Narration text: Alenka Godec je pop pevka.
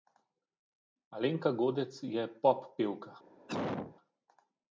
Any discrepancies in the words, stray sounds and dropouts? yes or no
yes